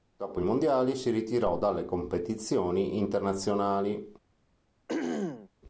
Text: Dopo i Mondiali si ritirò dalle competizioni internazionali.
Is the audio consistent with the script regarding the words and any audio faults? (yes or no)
no